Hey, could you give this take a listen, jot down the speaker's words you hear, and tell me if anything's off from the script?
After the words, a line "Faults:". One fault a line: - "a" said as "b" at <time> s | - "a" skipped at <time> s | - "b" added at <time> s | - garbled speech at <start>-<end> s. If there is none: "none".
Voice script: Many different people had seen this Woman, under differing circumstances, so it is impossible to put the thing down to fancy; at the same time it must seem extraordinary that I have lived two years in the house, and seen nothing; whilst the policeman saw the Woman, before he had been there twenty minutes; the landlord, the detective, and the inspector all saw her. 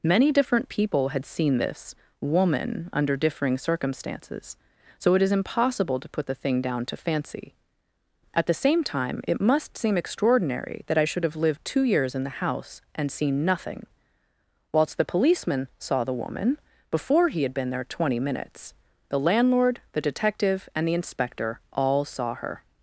Many different people had seen this Woman, under differing circumstances, so it is impossible to put the thing down to fancy; at the same time it must seem extraordinary that I should have lived two years in the house, and seen nothing; whilst the policeman saw the Woman, before he had been there twenty minutes; the landlord, the detective, and the inspector all saw her.
Faults:
- "should" added at 11.1 s